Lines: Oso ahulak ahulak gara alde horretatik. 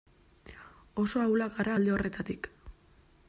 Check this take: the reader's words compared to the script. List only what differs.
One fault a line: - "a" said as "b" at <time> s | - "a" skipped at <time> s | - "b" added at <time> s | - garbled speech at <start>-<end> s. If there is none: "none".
- "ahulak" skipped at 1.5 s